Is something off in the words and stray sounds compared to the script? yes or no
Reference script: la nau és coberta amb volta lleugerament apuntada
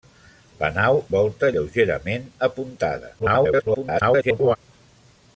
yes